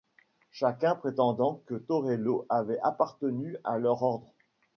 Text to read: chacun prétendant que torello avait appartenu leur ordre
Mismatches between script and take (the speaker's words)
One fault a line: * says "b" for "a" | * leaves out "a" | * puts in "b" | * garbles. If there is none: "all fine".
* puts in "à"